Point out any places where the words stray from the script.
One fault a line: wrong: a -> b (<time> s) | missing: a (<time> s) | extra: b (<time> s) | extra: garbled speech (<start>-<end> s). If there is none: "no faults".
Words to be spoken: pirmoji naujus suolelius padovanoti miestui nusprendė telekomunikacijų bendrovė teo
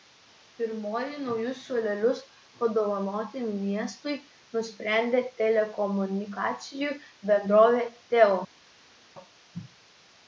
no faults